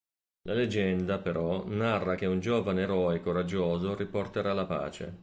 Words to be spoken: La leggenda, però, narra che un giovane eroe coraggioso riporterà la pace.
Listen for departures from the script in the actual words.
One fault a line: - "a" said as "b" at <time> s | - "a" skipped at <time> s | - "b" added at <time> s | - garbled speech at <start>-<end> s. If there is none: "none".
none